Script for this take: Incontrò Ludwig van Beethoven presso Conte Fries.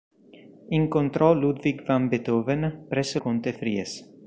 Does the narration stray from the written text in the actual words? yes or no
no